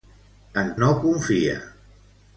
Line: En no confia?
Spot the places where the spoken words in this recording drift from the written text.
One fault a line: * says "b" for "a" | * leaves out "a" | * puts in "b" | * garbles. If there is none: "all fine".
all fine